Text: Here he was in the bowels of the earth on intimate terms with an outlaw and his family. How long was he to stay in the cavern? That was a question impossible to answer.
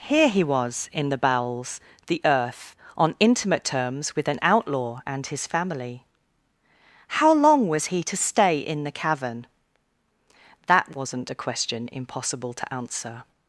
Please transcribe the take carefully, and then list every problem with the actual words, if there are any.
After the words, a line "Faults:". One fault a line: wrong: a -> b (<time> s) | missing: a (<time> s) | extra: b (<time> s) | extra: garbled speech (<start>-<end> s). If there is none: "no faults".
Here he was in the bowels the earth on intimate terms with an outlaw and his family. How long was he to stay in the cavern? That wasn't a question impossible to answer.
Faults:
missing: of (1.8 s)
wrong: was -> wasn't (10.9 s)